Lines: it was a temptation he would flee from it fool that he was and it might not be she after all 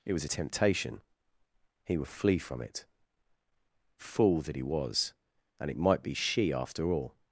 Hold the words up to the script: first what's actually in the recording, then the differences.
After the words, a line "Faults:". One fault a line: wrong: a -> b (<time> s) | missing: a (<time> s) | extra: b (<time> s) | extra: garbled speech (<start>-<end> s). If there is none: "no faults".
it was a temptation he would flee from it fool that he was and it might be she after all
Faults:
missing: not (6.0 s)